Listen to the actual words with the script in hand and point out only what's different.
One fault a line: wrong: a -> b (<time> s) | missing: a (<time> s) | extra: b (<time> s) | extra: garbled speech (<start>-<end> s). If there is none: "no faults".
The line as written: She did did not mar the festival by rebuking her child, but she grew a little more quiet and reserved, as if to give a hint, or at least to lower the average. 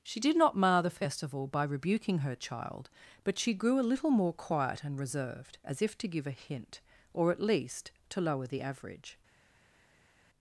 missing: did (0.3 s)